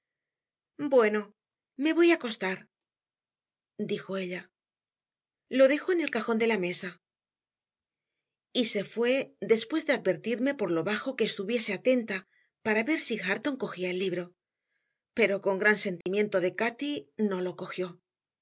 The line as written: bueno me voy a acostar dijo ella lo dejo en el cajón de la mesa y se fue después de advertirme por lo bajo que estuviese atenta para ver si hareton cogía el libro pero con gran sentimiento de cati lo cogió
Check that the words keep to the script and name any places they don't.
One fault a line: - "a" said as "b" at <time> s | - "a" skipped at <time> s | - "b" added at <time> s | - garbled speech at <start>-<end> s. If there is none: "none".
- "no" added at 17.2 s